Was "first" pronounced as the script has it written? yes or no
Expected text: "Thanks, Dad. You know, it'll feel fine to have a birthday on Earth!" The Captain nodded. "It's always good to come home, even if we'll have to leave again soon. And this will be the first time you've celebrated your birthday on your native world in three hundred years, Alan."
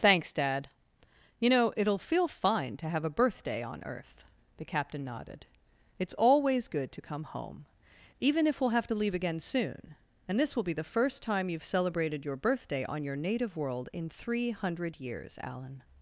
yes